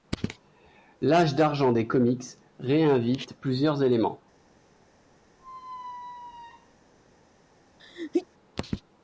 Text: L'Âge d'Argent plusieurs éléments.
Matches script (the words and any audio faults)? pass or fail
fail